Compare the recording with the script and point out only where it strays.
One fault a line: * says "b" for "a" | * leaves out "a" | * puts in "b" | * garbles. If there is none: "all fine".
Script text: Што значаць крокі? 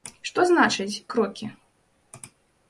all fine